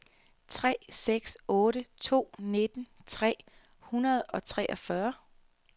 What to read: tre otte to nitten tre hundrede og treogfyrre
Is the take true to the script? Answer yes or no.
no